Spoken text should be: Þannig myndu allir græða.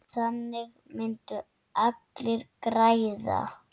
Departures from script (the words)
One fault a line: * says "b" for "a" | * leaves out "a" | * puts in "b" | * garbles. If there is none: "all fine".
all fine